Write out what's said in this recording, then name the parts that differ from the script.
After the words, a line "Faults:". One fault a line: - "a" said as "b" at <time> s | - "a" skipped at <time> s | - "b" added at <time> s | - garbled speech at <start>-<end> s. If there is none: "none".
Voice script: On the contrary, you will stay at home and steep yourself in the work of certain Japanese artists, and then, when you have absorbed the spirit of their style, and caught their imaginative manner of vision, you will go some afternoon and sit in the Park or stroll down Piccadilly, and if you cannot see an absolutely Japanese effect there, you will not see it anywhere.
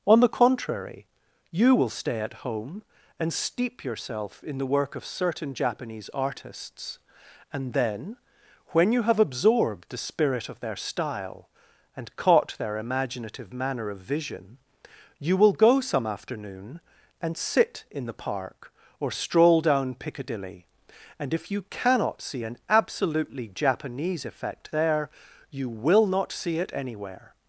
On the contrary, you will stay at home and steep yourself in the work of certain Japanese artists, and then, when you have absorbed the spirit of their style, and caught their imaginative manner of vision, you will go some afternoon and sit in the Park or stroll down Piccadilly, and if you cannot see an absolutely Japanese effect there, you will not see it anywhere.
Faults:
none